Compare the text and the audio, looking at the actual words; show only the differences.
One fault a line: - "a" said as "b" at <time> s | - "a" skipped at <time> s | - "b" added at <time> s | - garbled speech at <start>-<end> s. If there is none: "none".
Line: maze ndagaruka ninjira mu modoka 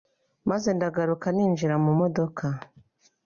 none